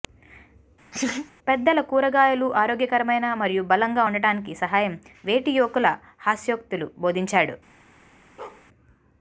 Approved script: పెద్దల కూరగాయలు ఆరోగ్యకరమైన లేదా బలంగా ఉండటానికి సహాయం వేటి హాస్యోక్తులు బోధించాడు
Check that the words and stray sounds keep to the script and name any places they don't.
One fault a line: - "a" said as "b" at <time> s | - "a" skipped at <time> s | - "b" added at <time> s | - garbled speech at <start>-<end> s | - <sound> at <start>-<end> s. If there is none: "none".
- laugh at 0.9-1.3 s
- "లేదా" said as "మరియు" at 3.3 s
- "యువకులు" added at 5.6 s
- bark at 8.4-8.7 s